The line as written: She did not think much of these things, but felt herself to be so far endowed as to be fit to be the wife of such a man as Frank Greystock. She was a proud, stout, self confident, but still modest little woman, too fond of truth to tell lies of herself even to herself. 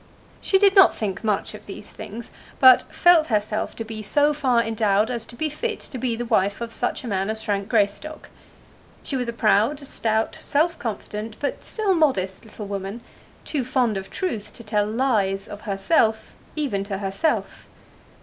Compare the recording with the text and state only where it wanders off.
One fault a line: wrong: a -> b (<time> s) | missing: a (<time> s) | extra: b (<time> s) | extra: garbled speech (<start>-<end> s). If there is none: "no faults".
no faults